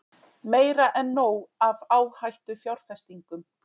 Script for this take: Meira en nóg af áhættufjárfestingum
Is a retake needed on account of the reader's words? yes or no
no